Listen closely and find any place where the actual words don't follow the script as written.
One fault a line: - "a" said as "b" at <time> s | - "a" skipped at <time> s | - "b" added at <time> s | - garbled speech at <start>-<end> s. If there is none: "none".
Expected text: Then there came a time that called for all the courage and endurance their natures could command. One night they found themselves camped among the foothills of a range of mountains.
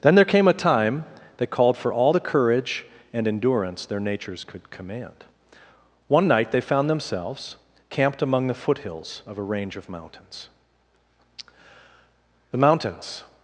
- "The mountains" added at 12.5 s